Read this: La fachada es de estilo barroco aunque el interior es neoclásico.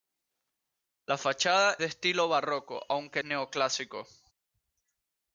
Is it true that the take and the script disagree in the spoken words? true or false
true